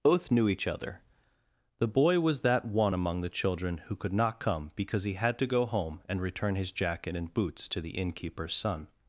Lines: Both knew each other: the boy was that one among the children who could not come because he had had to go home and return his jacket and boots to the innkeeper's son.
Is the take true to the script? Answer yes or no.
no